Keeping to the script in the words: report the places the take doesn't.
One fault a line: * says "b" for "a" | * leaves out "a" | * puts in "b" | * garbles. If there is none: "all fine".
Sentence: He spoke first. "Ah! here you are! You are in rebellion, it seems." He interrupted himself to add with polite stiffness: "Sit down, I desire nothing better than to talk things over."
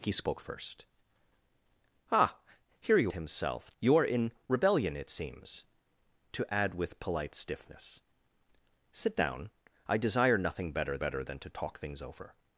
* says "himself" for "are"
* leaves out "He interrupted himself"
* puts in "better"